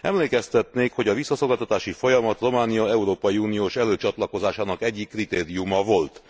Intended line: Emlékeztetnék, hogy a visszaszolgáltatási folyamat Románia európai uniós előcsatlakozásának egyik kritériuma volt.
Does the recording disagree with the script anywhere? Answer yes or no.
no